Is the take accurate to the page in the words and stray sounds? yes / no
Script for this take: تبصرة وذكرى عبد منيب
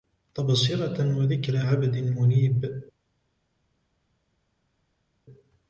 yes